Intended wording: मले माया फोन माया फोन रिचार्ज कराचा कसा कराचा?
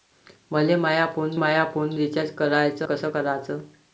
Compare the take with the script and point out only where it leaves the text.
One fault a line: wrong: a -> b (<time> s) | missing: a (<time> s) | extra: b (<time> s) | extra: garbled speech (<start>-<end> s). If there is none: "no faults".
no faults